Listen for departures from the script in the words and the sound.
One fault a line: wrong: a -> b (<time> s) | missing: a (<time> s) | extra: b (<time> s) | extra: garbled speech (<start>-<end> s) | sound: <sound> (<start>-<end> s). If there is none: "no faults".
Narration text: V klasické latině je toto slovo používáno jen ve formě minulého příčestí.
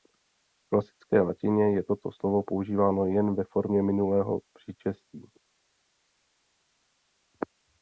no faults